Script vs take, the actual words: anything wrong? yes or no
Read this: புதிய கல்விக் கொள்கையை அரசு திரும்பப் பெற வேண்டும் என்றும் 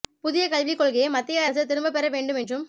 yes